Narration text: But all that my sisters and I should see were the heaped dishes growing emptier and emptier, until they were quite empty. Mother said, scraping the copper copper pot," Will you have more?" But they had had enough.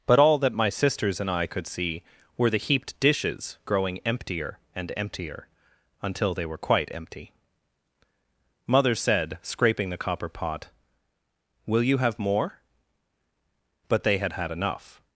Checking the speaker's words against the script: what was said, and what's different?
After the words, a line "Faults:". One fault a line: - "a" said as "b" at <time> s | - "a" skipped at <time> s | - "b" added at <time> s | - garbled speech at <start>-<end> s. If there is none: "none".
But all that my sisters and I could see were the heaped dishes growing emptier and emptier, until they were quite empty. Mother said, scraping the copper pot," Will you have more?" But they had had enough.
Faults:
- "should" said as "could" at 1.4 s
- "copper" skipped at 10.3 s